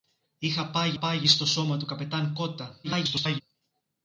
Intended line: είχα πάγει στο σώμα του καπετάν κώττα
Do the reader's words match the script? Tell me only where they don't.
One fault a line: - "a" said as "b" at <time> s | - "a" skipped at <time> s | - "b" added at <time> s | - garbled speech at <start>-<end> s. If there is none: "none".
- "πάγει" added at 1.0 s
- garbled speech at 2.8-3.4 s